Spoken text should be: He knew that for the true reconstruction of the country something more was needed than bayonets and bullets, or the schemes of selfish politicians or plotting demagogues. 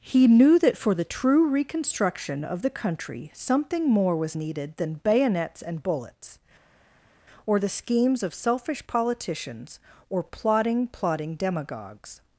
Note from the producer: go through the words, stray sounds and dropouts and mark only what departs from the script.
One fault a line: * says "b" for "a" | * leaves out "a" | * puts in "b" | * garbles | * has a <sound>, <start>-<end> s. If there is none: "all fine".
* puts in "plotting"